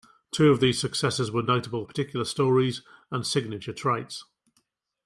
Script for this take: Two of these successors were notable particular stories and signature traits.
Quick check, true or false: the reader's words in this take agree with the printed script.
true